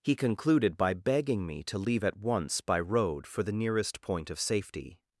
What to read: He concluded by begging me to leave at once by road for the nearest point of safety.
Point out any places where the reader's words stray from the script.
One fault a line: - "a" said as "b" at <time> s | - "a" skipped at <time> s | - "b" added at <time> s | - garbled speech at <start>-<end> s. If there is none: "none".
none